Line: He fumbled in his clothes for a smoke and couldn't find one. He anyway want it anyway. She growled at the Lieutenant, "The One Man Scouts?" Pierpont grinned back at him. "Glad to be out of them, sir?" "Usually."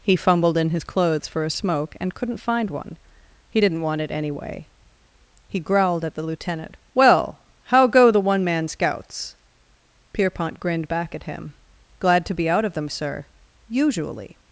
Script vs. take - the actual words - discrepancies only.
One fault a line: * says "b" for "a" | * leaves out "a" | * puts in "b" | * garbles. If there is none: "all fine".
* says "didn't" for "anyway"
* says "He" for "She"
* puts in "Well how go"